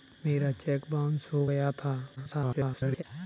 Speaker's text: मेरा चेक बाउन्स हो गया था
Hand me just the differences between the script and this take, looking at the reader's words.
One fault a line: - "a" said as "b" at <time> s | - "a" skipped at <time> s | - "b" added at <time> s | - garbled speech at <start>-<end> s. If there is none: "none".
- garbled speech at 2.2-3.0 s